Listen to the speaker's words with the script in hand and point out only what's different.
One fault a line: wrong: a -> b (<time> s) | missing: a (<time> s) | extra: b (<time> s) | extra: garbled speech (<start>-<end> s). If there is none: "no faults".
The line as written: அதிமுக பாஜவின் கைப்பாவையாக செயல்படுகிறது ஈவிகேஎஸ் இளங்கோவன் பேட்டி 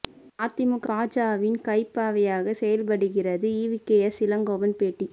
no faults